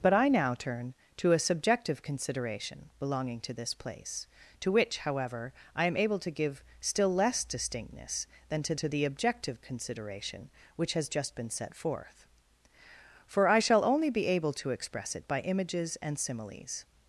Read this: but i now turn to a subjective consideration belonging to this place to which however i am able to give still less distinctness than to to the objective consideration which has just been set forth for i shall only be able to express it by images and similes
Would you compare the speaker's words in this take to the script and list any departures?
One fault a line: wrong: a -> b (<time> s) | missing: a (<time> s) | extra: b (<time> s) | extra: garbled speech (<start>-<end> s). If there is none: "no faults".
no faults